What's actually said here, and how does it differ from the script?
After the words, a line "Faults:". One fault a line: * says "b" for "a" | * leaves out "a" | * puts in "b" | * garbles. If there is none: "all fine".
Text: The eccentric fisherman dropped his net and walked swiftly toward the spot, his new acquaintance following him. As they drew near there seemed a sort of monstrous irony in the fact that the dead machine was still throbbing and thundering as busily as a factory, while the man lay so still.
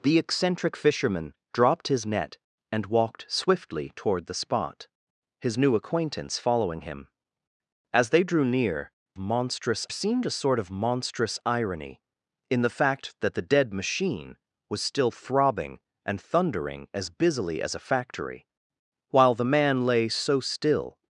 The eccentric fisherman dropped his net and walked swiftly toward the spot, his new acquaintance following him. As they drew near monstrous seemed a sort of monstrous irony in the fact that the dead machine was still throbbing and thundering as busily as a factory, while the man lay so still.
Faults:
* says "monstrous" for "there"